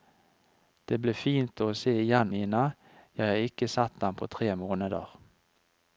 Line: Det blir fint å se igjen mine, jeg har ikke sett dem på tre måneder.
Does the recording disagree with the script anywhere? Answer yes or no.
no